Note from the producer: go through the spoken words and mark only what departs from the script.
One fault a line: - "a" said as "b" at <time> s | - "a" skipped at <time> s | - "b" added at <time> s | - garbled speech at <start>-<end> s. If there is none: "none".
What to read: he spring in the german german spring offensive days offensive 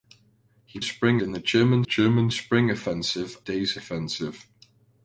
none